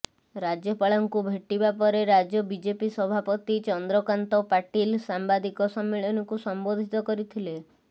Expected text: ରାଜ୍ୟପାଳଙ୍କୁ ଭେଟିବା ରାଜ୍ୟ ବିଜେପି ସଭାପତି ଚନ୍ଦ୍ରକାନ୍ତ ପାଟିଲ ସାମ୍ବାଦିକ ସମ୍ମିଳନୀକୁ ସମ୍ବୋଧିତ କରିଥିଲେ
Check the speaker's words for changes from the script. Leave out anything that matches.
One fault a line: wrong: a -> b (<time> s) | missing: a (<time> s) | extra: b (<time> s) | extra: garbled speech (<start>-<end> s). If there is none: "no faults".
extra: ପରେ (1.8 s)